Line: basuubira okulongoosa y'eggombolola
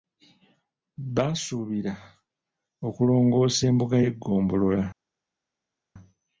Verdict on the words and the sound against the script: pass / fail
fail